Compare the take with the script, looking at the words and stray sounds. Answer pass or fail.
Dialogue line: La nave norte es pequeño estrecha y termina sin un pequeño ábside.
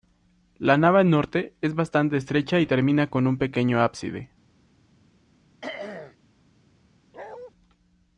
fail